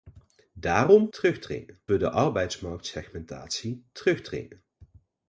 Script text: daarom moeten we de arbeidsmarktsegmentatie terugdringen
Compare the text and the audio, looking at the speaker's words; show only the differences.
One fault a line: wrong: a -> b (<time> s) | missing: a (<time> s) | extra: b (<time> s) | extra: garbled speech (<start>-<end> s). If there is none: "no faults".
wrong: moeten -> terugdringen (1.1 s)